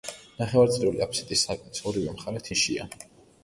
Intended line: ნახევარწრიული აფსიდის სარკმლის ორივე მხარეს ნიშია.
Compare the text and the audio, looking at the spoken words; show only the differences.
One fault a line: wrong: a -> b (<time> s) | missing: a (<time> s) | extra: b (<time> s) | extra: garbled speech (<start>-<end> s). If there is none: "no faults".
no faults